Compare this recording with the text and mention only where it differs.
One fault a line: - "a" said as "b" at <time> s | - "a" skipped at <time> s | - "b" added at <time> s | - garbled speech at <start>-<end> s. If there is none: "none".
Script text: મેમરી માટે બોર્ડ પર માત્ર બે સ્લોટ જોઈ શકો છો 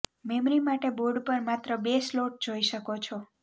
none